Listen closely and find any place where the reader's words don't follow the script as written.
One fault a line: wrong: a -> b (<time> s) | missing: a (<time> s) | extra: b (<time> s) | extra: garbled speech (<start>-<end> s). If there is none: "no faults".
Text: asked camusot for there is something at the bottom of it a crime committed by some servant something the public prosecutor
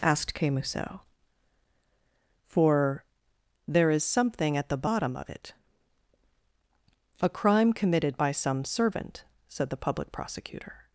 wrong: something -> said (9.5 s)